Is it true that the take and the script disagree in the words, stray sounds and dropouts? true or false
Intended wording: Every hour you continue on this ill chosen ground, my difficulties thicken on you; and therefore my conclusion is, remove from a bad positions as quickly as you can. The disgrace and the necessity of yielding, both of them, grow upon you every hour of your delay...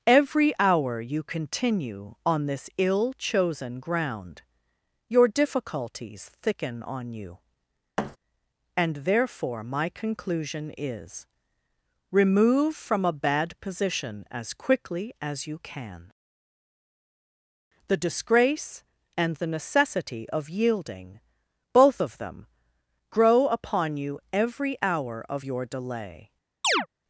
true